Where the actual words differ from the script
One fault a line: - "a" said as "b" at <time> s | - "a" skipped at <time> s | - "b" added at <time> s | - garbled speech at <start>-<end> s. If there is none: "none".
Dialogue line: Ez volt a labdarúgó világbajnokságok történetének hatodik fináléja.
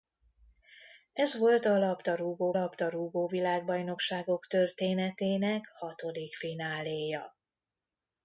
- "labdarúgó" added at 2.5 s